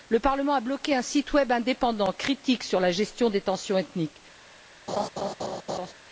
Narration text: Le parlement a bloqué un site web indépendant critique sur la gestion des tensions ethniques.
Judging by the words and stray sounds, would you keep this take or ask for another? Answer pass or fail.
fail